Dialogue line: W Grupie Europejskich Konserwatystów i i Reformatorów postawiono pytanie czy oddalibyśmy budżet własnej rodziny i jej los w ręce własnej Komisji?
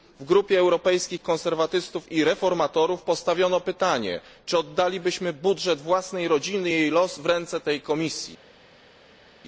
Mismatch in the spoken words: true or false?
true